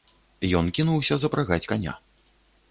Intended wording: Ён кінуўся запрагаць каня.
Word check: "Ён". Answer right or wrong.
right